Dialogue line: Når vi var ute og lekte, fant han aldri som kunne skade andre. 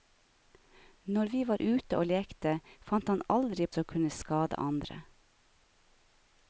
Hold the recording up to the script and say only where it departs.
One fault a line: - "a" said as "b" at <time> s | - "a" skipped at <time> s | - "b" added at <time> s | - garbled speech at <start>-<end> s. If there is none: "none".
none